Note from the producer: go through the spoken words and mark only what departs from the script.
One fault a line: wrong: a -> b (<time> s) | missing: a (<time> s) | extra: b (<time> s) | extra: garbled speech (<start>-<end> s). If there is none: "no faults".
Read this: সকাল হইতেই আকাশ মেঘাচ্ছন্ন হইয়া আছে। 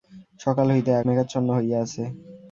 missing: আকাশ (1.0 s)